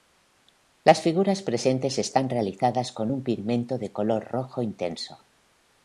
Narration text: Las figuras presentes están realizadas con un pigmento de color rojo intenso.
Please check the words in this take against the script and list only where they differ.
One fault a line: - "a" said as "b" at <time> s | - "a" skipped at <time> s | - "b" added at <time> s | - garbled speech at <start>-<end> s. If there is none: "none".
none